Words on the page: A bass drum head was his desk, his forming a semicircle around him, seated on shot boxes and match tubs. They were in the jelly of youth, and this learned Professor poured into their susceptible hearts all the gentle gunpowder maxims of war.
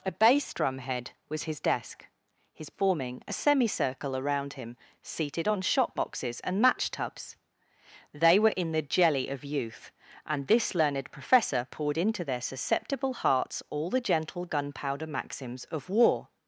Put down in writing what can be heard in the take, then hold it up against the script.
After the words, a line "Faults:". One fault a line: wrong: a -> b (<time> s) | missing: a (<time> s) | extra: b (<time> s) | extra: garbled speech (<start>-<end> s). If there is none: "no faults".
A bass drum head was his desk, his forming a semicircle around him, seated on shot boxes and match tubs. They were in the jelly of youth, and this learned Professor poured into their susceptible hearts all the gentle gunpowder maxims of war.
Faults:
no faults